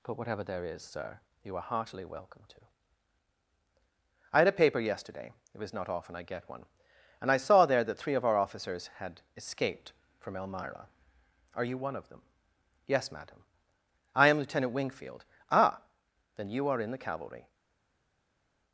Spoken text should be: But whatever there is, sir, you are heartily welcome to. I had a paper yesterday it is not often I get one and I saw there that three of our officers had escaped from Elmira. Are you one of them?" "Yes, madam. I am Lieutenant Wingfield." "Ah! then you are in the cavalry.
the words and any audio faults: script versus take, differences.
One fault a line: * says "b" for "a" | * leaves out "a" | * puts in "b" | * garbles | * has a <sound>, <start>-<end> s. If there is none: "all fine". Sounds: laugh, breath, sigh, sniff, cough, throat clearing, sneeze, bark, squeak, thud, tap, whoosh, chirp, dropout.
* says "was" for "is"